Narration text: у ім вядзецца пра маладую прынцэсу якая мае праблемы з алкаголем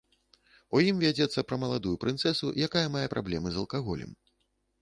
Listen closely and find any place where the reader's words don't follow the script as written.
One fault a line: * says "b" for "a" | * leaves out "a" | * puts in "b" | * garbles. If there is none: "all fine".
all fine